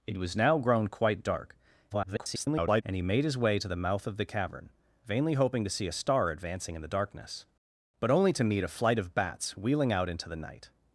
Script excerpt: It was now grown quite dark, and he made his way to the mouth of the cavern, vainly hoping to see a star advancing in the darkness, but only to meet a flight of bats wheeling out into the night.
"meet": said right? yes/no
yes